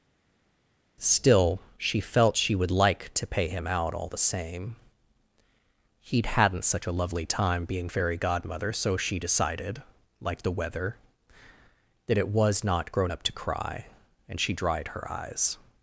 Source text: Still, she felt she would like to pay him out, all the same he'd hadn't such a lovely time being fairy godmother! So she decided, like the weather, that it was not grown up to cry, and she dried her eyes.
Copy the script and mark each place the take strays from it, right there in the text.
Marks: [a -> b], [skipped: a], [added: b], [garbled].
Still, she felt she would like to pay him out, all the same he'd hadn't such a lovely time being fairy godmother! So she decided, like the weather, that it was not grown up to cry, and she dried her eyes.